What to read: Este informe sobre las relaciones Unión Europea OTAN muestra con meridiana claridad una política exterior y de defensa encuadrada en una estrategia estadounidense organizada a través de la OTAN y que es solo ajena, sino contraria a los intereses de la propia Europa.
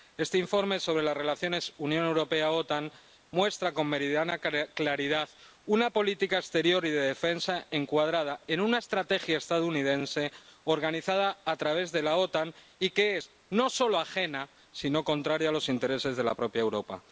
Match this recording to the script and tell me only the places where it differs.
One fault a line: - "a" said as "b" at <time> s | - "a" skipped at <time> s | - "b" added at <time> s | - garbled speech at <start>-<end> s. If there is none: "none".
- "no" added at 13.5 s